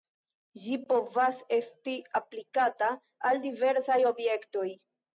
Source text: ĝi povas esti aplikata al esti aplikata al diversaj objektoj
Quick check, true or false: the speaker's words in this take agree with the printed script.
false